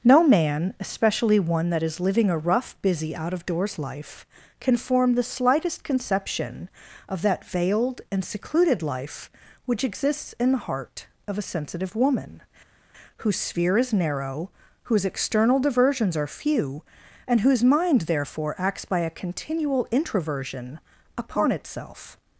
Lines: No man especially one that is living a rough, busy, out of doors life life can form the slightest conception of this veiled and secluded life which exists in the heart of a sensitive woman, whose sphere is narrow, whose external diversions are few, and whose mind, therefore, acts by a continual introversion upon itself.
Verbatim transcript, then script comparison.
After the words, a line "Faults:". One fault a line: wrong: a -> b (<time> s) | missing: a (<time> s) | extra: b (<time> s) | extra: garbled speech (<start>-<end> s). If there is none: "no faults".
No man especially one that is living a rough, busy, out of doors life can form the slightest conception of that veiled and secluded life which exists in the heart of a sensitive woman, whose sphere is narrow, whose external diversions are few, and whose mind, therefore, acts by a continual introversion upon itself.
Faults:
missing: life (4.2 s)
wrong: this -> that (7.2 s)